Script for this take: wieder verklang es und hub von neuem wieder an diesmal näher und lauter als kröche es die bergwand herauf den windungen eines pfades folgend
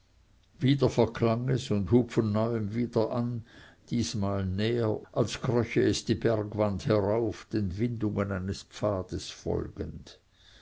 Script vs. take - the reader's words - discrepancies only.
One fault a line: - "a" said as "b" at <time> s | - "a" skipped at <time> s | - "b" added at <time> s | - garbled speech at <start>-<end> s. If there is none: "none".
- "und lauter" skipped at 5.0 s